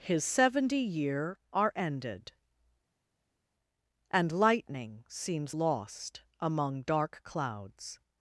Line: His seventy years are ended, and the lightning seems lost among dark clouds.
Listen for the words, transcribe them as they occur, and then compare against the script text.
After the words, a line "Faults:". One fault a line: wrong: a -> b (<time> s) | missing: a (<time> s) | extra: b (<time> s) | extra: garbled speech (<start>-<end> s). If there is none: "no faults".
His seventy year are ended, and lightning seems lost among dark clouds.
Faults:
wrong: years -> year (0.8 s)
missing: the (4.3 s)